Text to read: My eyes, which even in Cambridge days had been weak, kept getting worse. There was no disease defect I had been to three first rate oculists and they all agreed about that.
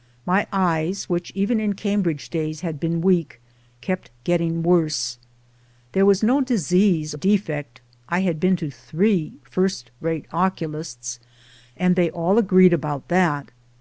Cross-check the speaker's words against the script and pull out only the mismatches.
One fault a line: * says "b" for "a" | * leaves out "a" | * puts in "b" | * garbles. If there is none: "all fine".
all fine